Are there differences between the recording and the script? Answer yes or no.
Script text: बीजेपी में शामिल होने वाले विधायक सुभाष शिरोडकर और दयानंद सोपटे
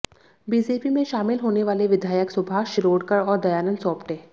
no